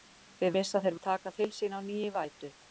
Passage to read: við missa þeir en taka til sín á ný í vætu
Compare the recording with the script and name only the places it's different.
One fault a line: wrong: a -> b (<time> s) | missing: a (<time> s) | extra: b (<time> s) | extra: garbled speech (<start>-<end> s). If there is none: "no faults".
no faults